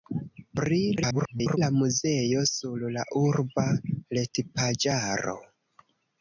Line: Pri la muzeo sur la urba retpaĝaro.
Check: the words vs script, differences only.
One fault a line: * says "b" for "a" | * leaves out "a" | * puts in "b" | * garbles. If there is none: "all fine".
* garbles